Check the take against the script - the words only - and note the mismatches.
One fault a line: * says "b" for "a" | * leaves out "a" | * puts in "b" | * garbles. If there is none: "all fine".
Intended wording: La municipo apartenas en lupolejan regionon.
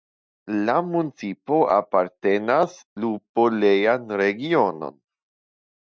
* leaves out "en"